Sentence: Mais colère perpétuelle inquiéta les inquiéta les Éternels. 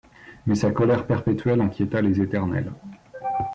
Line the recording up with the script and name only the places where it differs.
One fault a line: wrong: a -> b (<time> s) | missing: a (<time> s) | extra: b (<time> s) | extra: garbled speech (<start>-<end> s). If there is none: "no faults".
extra: sa (0.6 s)
missing: inquiéta les (2.2 s)